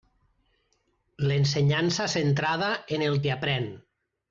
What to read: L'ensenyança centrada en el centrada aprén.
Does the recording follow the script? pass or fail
fail